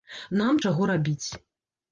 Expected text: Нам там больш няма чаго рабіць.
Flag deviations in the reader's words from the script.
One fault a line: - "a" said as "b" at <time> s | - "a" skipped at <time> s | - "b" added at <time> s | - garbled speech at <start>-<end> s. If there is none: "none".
- "там больш няма" skipped at 0.6 s